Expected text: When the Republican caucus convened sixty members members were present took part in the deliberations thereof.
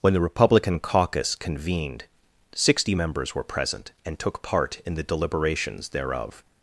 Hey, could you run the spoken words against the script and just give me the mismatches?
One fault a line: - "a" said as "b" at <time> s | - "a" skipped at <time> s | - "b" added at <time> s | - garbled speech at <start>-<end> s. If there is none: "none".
- "members" skipped at 3.3 s
- "and" added at 4.0 s